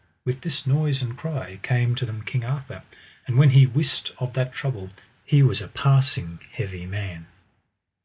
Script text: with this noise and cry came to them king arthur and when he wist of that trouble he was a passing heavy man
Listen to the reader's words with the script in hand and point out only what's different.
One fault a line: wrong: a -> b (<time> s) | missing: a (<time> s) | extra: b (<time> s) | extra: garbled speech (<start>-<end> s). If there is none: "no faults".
no faults